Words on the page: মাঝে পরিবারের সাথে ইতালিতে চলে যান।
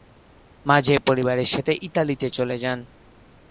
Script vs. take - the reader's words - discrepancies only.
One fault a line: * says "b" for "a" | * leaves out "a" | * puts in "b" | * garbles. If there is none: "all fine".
all fine